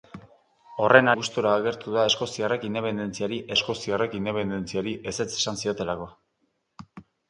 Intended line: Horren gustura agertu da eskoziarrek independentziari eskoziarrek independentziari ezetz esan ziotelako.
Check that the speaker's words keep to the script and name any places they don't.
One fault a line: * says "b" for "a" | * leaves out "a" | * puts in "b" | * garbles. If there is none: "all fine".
all fine